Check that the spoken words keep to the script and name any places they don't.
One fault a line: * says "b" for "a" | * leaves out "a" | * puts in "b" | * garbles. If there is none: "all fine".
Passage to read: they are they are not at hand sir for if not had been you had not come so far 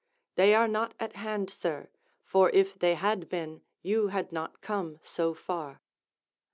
* leaves out "they are"
* says "they" for "not"